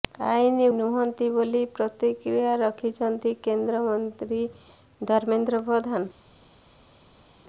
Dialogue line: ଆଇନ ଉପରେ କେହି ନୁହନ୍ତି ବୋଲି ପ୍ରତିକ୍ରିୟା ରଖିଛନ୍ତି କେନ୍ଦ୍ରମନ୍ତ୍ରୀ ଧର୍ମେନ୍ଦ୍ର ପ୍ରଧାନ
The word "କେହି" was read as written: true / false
false